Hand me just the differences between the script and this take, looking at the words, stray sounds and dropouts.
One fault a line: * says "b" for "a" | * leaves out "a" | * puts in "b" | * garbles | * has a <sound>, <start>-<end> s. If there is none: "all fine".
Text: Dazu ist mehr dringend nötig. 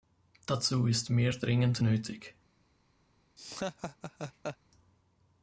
* has a laugh, 3.4-4.6 s